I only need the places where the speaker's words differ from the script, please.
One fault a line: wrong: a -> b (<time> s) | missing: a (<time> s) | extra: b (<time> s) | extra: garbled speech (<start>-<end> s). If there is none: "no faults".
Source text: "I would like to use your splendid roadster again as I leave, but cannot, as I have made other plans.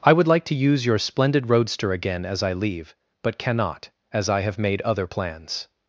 no faults